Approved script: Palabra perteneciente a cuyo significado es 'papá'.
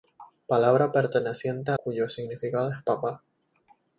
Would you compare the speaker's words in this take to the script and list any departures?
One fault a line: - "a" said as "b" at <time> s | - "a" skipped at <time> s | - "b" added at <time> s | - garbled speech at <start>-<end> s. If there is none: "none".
none